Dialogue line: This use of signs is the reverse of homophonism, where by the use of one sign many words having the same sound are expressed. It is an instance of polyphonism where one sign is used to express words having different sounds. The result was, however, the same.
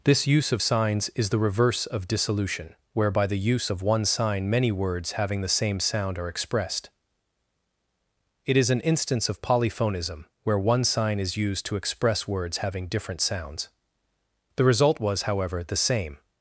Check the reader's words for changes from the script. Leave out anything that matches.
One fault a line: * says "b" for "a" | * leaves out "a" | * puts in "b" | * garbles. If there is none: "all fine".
* says "dissolution" for "homophonism"